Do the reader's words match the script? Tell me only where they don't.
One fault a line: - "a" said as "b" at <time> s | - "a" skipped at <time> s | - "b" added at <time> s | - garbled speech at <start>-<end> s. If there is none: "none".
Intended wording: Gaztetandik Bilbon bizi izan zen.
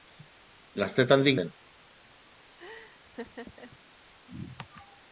- "Bilbon bizi izan" skipped at 1.4 s